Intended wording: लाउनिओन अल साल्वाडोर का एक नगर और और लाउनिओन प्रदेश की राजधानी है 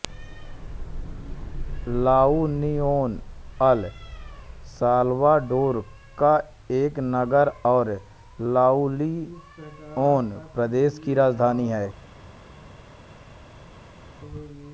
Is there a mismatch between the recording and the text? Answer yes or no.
yes